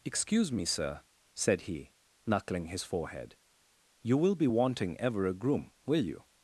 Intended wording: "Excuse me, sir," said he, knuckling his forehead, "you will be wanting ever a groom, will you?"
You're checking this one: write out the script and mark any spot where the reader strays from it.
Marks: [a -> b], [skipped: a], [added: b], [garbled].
"Excuse me, sir," said he, knuckling his forehead, "you will be wanting ever a groom, will you?"